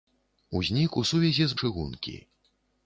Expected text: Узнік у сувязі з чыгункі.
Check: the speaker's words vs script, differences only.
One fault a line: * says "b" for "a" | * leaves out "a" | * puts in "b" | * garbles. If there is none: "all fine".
all fine